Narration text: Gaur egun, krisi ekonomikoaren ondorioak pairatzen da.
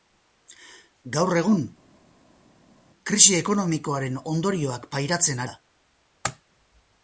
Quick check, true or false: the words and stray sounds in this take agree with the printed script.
true